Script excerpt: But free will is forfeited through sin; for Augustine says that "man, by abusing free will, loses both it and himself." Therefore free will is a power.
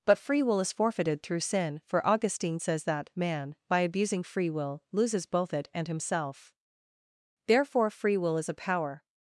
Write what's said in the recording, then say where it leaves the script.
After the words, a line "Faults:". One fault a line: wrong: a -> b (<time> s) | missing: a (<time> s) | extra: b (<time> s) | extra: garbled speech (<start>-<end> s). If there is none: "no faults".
But free will is forfeited through sin; for Augustine says that "man, by abusing free will, loses both it and himself." Therefore free will is a power.
Faults:
no faults